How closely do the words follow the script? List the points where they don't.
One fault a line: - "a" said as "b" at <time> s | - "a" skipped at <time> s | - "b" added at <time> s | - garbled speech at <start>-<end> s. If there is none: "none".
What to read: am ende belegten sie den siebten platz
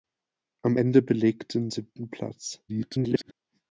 - "sie den" skipped at 1.7 s
- garbled speech at 2.7-3.3 s